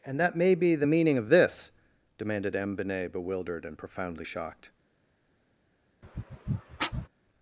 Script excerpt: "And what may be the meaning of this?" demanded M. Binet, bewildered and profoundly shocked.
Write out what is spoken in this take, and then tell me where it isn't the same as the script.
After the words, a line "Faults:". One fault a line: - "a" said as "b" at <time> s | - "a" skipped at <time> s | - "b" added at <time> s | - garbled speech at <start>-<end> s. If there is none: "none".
"And that may be the meaning of this?" demanded M. Binet, bewildered and profoundly shocked.
Faults:
- "what" said as "that" at 0.2 s